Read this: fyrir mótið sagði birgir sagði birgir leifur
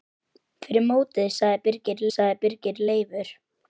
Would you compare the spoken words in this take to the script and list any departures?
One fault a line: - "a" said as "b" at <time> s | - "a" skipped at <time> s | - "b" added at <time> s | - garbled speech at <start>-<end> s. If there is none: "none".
none